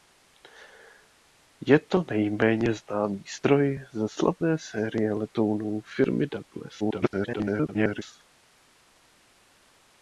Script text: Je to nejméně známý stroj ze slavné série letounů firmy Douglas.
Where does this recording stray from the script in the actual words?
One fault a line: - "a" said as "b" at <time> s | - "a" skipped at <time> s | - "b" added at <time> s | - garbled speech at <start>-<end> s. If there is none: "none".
- garbled speech at 6.8-8.0 s